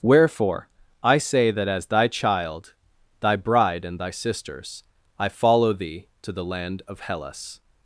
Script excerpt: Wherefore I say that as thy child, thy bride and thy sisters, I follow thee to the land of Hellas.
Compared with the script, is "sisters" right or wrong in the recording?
right